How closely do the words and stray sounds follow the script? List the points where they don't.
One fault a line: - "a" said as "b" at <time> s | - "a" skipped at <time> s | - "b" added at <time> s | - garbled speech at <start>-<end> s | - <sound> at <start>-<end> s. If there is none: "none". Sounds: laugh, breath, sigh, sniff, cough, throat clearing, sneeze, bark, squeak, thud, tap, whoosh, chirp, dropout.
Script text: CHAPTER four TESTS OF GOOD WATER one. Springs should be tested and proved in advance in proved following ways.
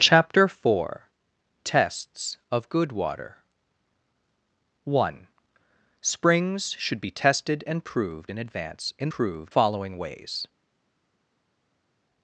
none